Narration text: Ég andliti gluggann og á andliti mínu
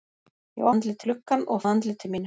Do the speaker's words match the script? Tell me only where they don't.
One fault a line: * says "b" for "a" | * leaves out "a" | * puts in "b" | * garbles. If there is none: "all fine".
all fine